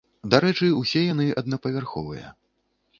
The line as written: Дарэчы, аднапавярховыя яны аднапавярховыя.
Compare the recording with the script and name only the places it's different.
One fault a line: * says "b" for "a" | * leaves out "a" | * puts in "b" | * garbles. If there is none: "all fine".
* says "усе" for "аднапавярховыя"